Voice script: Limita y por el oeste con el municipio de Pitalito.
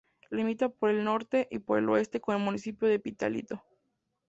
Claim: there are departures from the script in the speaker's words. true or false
true